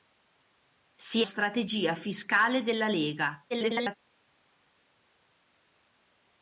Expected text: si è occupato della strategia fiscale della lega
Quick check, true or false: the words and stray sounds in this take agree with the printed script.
false